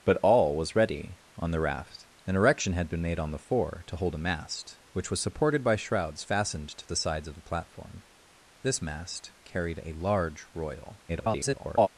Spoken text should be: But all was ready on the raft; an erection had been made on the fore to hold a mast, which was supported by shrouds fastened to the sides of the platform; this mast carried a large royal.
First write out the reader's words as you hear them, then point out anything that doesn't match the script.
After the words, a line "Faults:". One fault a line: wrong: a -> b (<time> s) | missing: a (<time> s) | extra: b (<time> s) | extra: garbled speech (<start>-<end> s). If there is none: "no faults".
But all was ready on the raft; an erection had been made on the fore to hold a mast, which was supported by shrouds fastened to the sides of the platform; this mast carried a large royal. [garbled]
Faults:
extra: garbled speech (11.1-11.9 s)